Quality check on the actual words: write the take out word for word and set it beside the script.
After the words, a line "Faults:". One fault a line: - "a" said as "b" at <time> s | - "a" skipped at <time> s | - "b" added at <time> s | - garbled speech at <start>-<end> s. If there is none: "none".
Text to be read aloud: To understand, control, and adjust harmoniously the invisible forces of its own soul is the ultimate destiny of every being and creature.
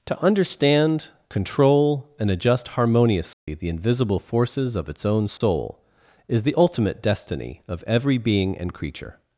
To understand, control, and adjust harmoniously the invisible forces of its own soul is the ultimate destiny of every being and creature.
Faults:
none